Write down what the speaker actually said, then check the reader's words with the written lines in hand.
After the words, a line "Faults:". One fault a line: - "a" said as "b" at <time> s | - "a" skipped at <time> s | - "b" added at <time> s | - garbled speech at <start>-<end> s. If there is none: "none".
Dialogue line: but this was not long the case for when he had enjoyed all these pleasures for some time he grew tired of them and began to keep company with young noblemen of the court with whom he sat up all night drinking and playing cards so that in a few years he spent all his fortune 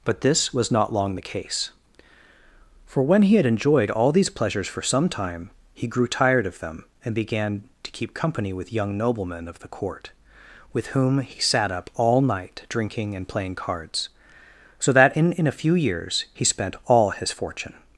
but this was not long the case for when he had enjoyed all these pleasures for some time he grew tired of them and began to keep company with young noblemen of the court with whom he sat up all night drinking and playing cards so that in in a few years he spent all his fortune
Faults:
- "in" added at 15.3 s